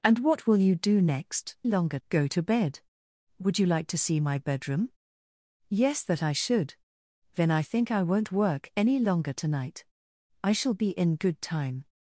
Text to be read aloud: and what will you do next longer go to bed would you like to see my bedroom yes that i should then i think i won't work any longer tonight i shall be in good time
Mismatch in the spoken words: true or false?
false